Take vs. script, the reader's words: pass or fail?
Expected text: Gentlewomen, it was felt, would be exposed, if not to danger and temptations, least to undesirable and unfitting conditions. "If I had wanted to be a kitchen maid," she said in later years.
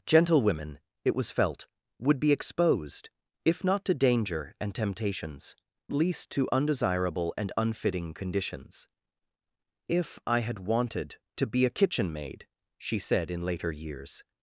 pass